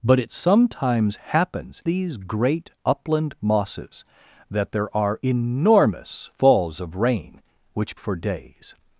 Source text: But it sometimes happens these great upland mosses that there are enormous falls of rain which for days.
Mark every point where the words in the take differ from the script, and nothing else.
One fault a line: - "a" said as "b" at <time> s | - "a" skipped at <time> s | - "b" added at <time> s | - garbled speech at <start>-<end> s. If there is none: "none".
none